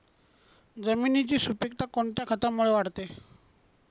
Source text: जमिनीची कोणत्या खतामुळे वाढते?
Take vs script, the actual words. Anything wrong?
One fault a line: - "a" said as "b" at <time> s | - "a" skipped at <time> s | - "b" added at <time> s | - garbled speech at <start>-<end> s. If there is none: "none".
- "सुपिकता" added at 1.4 s